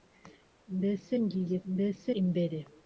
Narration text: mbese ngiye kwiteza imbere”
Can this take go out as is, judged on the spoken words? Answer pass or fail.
fail